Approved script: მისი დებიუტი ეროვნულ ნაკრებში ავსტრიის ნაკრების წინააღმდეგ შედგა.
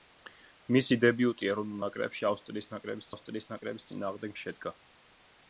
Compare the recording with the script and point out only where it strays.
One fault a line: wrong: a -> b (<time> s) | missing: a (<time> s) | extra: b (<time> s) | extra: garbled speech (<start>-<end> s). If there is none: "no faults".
extra: ავსტრიის ნაკრების (3.1 s)